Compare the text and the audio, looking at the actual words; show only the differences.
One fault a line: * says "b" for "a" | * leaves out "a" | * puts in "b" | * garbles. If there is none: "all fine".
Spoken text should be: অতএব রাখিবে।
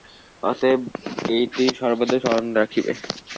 * puts in "এইটি সর্বদা স্মরণ"